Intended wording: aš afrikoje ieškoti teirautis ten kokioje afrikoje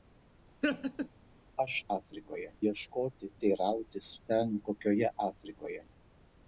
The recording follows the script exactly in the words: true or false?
true